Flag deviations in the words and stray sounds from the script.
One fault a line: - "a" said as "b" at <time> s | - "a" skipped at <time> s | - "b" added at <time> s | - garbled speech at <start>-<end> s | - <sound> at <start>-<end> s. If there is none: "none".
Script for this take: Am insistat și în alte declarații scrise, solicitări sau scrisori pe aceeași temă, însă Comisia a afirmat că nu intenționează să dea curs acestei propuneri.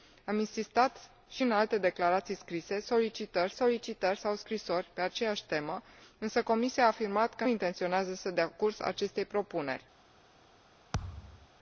- "solicitări" added at 3.5 s
- "nu" skipped at 7.4 s
- thud at 10.9-11.5 s